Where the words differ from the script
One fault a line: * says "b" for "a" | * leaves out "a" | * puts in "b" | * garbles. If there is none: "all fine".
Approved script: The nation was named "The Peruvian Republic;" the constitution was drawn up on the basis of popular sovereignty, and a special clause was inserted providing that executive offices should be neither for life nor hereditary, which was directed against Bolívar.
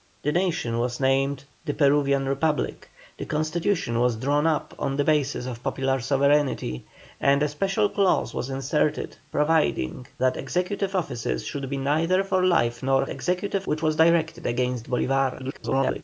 * says "executive" for "hereditary"
* garbles